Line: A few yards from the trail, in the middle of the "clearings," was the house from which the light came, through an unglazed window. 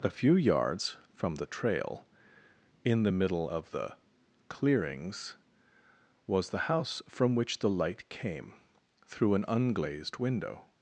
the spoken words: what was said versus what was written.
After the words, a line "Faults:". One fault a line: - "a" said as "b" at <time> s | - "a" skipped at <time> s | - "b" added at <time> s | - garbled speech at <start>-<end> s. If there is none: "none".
A few yards from the trail, in the middle of the "clearings," was the house from which the light came, through an unglazed window.
Faults:
none